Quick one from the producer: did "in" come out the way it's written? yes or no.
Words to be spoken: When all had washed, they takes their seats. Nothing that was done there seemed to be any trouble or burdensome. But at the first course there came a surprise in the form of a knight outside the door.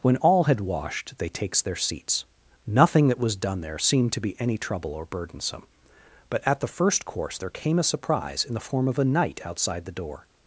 yes